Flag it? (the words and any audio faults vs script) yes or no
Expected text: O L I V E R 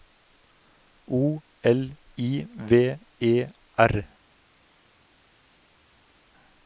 no